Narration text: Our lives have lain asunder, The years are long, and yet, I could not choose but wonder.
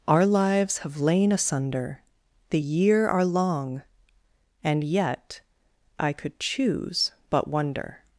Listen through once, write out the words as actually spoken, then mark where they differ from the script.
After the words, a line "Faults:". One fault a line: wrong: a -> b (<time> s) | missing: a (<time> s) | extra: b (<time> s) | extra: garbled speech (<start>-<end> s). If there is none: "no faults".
Our lives have lain asunder, The year are long, and yet, I could choose but wonder.
Faults:
wrong: years -> year (2.6 s)
missing: not (6.4 s)